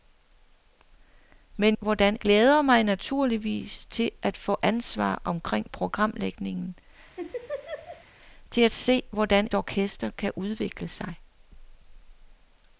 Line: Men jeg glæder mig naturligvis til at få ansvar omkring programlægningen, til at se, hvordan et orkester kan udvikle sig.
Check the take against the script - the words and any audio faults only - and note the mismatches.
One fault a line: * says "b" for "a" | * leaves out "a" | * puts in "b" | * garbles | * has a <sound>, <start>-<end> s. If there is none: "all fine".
* says "hvordan" for "jeg"
* has a laugh, 7.2-8.0 s
* leaves out "et"